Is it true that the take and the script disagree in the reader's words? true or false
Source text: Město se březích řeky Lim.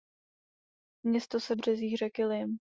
false